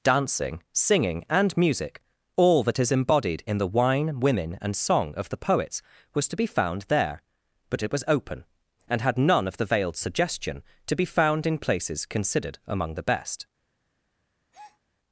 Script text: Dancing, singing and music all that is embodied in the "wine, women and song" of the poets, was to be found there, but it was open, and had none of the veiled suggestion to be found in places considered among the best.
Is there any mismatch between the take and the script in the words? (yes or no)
no